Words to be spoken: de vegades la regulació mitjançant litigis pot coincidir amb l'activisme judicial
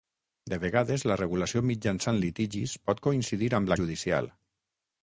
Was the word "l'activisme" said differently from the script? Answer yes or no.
yes